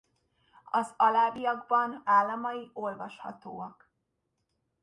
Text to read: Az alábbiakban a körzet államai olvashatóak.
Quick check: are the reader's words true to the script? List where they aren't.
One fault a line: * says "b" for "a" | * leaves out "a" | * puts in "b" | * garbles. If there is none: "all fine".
* leaves out "a körzet"